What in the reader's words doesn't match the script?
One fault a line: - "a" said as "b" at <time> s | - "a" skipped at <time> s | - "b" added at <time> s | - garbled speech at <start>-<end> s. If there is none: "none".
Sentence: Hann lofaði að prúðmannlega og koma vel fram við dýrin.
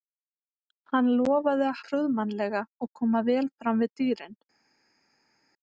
none